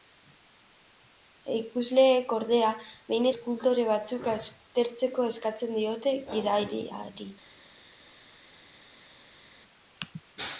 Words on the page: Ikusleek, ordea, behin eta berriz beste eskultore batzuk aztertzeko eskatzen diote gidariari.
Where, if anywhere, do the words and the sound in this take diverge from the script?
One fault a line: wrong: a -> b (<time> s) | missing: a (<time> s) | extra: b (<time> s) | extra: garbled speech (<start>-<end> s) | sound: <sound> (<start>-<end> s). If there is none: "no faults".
missing: eta berriz beste (3.3 s)